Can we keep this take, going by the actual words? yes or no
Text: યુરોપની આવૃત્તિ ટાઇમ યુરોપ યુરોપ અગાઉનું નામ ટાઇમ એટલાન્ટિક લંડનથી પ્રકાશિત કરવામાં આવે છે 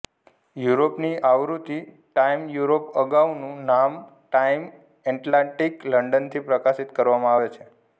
no